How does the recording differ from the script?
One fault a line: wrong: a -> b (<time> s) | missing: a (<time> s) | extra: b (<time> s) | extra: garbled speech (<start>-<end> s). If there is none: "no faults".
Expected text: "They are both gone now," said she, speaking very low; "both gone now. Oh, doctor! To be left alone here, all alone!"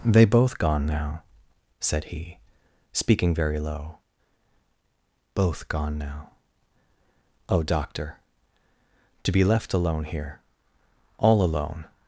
missing: are (0.2 s)
wrong: she -> he (2.0 s)